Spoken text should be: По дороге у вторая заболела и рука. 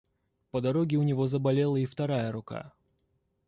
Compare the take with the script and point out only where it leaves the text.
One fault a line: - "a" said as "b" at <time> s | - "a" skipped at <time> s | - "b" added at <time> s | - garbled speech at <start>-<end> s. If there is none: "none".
- "вторая" said as "него" at 1.0 s
- "вторая" added at 1.9 s